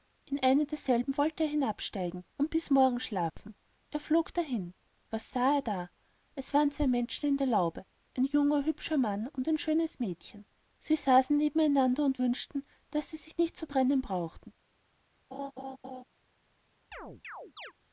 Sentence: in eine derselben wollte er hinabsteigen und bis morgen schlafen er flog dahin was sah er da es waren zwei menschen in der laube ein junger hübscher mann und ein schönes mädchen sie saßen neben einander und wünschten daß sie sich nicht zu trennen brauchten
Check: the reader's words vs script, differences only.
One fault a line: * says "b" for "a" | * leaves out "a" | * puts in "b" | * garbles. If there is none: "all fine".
all fine